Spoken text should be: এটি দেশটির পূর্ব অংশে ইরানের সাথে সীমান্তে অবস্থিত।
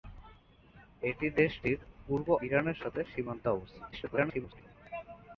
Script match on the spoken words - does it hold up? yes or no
no